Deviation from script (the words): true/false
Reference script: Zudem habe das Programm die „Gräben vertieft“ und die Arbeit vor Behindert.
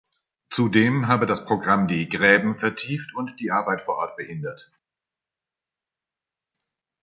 true